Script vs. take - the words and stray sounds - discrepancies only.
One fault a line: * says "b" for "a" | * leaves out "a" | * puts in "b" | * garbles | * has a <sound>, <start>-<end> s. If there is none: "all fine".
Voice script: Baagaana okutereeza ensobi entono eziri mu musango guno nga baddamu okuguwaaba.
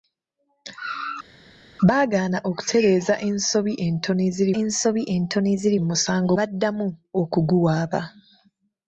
* puts in "ensobi entono eziri"
* leaves out "guno nga"